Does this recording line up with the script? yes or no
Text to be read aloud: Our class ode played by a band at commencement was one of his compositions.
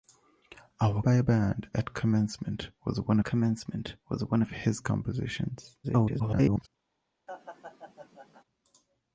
no